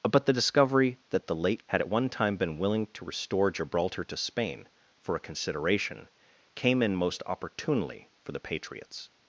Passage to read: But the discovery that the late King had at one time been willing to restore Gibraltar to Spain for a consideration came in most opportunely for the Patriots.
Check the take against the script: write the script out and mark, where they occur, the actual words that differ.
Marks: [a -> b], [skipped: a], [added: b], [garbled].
But the discovery that the late [skipped: King] had at one time been willing to restore Gibraltar to Spain for a consideration came in most opportunely for the Patriots.